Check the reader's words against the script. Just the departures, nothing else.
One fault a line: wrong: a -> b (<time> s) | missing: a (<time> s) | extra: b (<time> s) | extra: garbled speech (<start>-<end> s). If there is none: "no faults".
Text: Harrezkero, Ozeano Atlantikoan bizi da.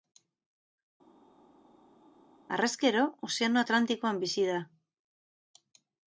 no faults